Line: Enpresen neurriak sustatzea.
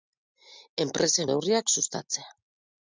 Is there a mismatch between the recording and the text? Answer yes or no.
no